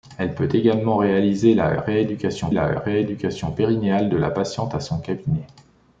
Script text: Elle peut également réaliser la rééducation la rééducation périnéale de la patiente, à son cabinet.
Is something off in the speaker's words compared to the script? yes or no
no